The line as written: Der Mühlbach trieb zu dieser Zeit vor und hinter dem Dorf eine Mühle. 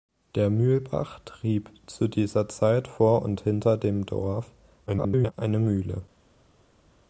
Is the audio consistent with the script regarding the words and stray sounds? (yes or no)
no